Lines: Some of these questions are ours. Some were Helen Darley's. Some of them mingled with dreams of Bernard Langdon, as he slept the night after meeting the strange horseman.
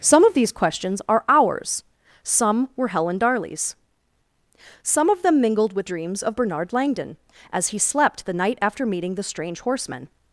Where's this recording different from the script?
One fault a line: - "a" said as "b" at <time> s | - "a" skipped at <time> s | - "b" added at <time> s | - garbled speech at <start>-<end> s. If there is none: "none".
none